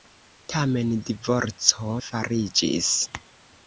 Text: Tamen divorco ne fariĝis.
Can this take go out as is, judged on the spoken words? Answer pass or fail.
fail